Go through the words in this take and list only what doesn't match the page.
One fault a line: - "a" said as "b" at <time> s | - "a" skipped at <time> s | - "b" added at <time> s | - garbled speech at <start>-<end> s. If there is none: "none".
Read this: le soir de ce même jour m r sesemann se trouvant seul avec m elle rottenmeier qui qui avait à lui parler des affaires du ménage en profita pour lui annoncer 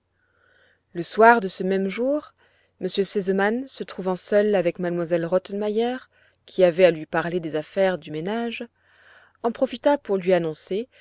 - "qui" skipped at 6.6 s